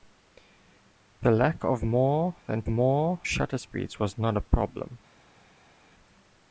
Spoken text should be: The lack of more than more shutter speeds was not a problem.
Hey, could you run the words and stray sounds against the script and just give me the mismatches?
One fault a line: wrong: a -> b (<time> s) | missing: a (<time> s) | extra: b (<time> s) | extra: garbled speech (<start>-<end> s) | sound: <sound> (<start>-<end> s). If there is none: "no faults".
no faults